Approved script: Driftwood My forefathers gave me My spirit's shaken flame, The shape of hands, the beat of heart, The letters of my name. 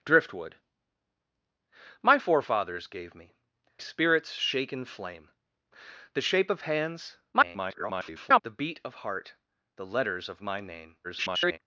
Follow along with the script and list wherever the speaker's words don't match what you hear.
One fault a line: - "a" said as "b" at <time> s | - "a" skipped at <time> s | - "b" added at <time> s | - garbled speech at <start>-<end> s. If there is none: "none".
- "My" skipped at 3.3 s
- garbled speech at 7.3-8.4 s
- garbled speech at 11.0-11.6 s